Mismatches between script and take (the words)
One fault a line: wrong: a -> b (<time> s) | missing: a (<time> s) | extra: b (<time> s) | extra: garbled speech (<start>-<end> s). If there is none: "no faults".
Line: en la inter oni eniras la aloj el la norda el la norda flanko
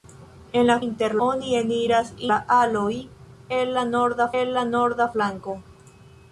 no faults